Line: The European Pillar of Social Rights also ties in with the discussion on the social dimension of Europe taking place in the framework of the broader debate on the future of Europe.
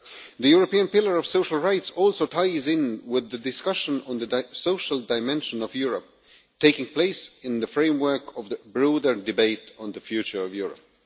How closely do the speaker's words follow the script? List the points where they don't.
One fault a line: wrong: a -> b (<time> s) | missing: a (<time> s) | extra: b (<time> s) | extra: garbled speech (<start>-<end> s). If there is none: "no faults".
no faults